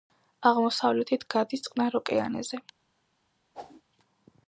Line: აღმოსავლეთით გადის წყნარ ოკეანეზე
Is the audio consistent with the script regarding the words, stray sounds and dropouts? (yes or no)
no